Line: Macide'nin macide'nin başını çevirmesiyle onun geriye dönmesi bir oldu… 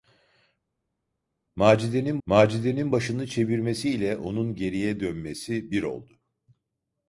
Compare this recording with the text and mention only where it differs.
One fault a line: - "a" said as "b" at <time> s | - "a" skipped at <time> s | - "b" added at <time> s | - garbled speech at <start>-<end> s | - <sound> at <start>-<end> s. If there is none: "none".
none